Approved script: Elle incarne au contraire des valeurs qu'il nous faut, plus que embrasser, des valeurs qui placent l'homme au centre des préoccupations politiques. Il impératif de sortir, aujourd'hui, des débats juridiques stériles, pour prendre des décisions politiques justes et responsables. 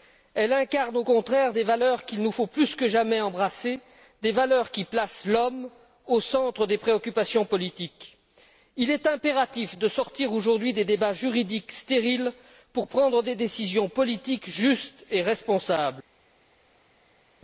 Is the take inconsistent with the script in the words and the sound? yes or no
yes